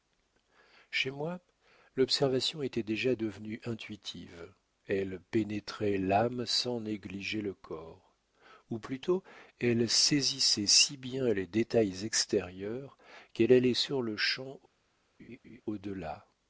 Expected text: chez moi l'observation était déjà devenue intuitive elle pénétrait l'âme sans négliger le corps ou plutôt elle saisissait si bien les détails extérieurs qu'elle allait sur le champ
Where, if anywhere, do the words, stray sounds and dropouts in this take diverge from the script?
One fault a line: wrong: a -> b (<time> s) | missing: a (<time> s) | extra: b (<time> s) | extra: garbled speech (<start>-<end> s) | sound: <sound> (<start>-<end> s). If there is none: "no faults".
sound: laugh (15.2-15.6 s)